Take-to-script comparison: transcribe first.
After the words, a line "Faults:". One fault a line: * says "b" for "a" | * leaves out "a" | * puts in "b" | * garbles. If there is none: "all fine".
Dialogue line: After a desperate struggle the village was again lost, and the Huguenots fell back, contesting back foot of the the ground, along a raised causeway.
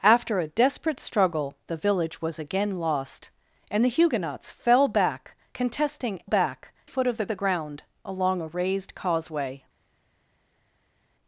After a desperate struggle the village was again lost, and the Huguenots fell back, contesting back foot of the the ground, along a raised causeway.
Faults:
all fine